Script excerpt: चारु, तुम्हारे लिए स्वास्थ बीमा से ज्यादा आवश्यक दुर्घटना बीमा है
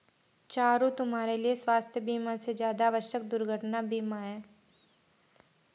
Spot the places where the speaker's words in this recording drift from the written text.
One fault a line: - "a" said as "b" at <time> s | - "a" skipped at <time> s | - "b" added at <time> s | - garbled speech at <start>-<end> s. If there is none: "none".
none